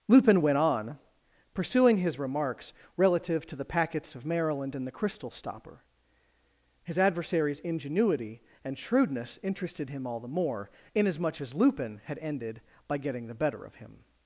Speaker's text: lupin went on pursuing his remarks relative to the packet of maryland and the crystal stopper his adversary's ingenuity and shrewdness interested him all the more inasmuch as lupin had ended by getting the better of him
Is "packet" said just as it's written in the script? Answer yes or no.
no